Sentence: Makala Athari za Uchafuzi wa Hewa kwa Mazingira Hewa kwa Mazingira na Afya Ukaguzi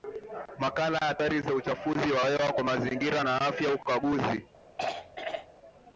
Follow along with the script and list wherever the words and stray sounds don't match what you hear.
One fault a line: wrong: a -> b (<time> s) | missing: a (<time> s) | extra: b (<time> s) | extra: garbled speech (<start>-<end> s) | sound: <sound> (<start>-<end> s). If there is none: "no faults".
missing: Hewa kwa Mazingira (3.2 s)
sound: throat clearing (4.8-5.5 s)